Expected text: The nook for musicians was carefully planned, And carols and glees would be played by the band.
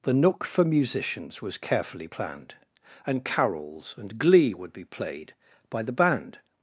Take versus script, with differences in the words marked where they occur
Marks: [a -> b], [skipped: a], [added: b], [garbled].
The nook for musicians was carefully planned, And carols and [glees -> glee] would be played by the band.